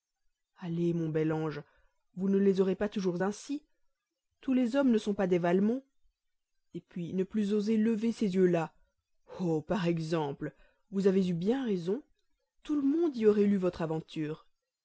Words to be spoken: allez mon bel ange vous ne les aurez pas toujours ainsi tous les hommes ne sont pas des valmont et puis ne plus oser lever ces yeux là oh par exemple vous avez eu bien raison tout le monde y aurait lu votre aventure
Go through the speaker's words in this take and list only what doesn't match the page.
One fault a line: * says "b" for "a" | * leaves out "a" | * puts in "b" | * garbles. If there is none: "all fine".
all fine